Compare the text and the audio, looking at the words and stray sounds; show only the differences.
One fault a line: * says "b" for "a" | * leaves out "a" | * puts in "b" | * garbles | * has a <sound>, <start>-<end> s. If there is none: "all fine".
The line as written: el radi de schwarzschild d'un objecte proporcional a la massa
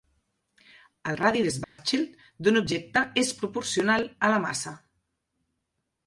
* has a dropout, 1.6-1.8 s
* puts in "és"